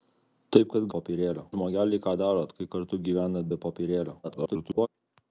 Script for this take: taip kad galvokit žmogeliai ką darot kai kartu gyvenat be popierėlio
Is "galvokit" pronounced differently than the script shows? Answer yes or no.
yes